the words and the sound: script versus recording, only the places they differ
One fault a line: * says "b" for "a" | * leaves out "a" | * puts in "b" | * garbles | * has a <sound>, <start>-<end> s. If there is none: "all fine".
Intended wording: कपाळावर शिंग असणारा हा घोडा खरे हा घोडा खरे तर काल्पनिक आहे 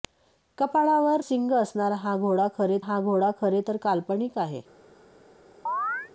* has a chirp, 5.7-6.1 s